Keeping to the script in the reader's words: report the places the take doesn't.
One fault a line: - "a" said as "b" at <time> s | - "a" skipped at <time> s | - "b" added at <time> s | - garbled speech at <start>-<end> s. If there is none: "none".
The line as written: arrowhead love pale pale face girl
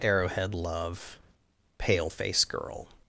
- "pale" skipped at 2.1 s